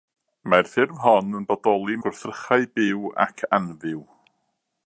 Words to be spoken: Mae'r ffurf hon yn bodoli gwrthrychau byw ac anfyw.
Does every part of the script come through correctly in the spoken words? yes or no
yes